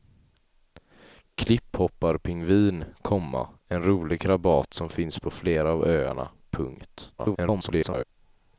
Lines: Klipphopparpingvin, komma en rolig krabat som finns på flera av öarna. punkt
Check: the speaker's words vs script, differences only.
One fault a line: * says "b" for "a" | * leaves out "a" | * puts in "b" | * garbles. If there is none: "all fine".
* garbles